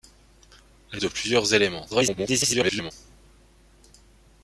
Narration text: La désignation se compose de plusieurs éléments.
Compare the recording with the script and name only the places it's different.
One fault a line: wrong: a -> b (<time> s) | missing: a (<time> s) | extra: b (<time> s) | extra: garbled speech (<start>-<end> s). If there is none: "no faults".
missing: désignation se compose (1.0 s)
extra: garbled speech (1.9-2.9 s)